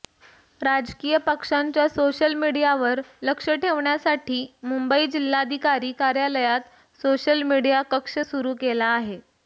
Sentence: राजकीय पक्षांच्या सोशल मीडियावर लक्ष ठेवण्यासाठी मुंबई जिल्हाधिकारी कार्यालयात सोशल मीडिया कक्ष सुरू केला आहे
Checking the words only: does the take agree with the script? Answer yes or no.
yes